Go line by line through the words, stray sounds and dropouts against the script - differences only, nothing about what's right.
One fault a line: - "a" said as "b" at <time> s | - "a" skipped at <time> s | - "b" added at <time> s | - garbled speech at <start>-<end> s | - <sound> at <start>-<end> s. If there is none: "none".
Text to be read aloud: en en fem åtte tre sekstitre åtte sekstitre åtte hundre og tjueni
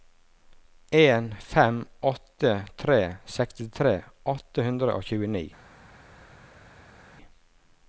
- "en" skipped at 1.4 s
- "sekstitre åtte" skipped at 4.7 s